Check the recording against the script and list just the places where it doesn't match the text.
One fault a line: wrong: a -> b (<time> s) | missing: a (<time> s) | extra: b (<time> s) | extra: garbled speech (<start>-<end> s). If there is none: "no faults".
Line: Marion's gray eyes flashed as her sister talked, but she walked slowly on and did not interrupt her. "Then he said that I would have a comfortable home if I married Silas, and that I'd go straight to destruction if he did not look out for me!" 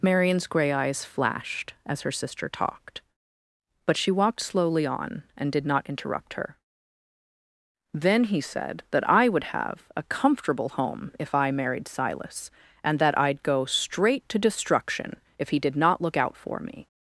no faults